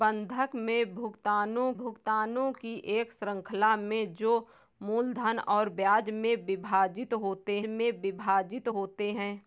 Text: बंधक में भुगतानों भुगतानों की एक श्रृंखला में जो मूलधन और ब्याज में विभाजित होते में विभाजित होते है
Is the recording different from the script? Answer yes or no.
no